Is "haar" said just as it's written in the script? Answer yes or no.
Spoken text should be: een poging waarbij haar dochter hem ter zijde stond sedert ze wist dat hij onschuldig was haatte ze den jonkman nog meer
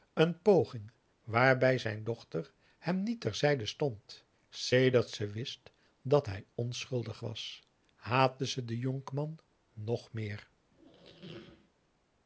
no